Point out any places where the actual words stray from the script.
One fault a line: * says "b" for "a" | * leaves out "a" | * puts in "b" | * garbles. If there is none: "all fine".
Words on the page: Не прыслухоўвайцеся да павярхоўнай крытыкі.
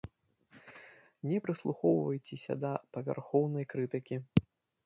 all fine